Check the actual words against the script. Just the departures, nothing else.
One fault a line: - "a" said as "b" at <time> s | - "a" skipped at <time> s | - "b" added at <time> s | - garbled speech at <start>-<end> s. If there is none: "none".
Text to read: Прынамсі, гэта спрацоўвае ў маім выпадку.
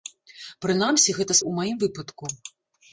- "спрацоўвае" skipped at 1.4 s